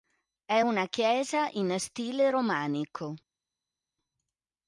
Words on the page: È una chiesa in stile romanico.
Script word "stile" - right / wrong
right